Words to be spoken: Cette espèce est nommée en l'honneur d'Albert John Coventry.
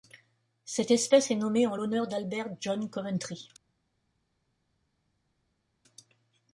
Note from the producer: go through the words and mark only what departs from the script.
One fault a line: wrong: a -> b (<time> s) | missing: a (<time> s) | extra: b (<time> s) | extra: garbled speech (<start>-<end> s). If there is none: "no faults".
no faults